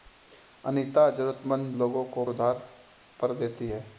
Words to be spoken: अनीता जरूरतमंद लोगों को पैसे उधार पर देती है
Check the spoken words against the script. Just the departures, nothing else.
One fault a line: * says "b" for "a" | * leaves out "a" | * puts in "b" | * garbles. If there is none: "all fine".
* leaves out "पैसे"